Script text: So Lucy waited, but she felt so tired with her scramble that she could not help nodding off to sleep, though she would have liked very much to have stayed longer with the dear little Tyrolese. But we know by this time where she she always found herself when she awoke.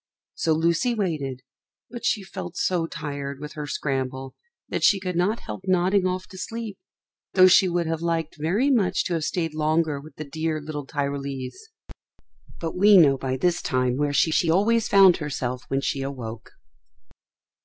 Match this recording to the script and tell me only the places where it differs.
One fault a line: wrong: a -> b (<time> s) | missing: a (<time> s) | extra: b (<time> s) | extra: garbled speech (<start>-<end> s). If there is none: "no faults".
no faults